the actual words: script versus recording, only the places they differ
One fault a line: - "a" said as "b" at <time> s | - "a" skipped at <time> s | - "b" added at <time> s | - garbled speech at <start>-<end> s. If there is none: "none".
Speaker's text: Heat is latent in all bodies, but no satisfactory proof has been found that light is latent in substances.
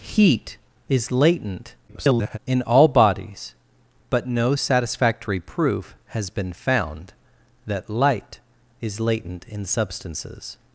- garbled speech at 1.9-2.4 s